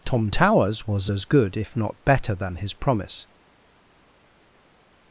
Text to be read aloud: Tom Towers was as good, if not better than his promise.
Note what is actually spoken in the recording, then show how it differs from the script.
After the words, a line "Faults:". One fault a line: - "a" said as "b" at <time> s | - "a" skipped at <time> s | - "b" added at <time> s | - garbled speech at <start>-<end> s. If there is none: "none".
Tom Towers was as good, if not better than his promise.
Faults:
none